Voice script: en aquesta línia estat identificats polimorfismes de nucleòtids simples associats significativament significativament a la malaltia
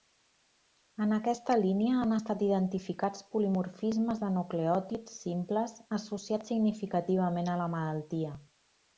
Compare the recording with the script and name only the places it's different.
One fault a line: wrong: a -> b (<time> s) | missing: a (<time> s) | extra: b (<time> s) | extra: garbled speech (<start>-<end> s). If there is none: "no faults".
extra: han (2.0 s)
missing: significativament (7.5 s)